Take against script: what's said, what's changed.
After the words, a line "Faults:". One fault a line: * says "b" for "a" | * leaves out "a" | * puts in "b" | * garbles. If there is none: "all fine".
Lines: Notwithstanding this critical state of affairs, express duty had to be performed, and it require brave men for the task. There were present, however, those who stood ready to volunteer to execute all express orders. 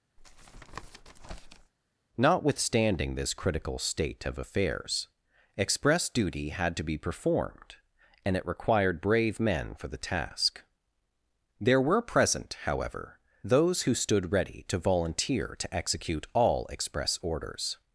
Notwithstanding this critical state of affairs, express duty had to be performed, and it required brave men for the task. There were present, however, those who stood ready to volunteer to execute all express orders.
Faults:
* says "required" for "require"